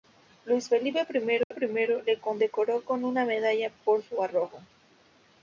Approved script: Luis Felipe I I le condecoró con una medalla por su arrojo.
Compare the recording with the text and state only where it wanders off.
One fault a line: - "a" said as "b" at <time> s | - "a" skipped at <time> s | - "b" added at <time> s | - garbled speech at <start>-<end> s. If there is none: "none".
none